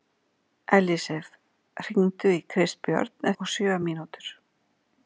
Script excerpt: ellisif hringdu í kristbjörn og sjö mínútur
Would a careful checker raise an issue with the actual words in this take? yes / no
no